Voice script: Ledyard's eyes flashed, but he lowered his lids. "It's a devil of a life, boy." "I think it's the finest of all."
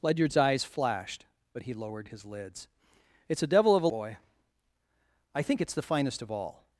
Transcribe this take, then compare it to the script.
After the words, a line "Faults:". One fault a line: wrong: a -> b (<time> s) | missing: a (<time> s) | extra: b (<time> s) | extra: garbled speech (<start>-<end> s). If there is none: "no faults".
Ledyard's eyes flashed, but he lowered his lids. "It's a devil of a boy." "I think it's the finest of all."
Faults:
missing: life (3.9 s)